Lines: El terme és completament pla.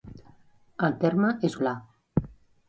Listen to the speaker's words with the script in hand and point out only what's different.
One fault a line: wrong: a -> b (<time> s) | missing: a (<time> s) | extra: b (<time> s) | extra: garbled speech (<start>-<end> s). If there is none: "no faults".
missing: completament (1.6 s)